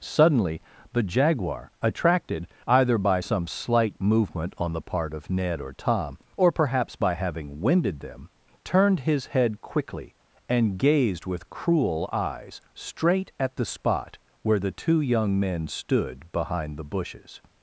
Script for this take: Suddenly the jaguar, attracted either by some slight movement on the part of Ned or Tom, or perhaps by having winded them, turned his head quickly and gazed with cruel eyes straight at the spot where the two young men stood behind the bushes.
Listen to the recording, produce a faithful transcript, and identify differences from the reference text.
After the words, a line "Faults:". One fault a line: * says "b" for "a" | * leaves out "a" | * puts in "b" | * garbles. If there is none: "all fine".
Suddenly the jaguar, attracted either by some slight movement on the part of Ned or Tom, or perhaps by having winded them, turned his head quickly and gazed with cruel eyes straight at the spot where the two young men stood behind the bushes.
Faults:
all fine